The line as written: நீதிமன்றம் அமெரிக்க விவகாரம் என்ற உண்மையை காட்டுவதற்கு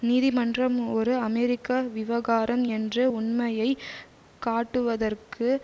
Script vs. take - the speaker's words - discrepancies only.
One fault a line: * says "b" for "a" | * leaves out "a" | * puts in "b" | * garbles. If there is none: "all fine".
* puts in "ஒரு"